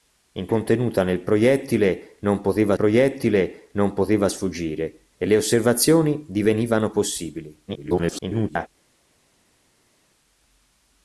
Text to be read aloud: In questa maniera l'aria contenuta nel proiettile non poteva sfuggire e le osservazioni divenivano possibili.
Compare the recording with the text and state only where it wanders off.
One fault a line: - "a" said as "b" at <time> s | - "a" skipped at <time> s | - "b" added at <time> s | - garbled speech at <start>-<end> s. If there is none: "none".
- "questa maniera l'aria contenuta nel" said as "contenuta nel proiettile non poteva" at 0.5 s
- garbled speech at 7.7-8.7 s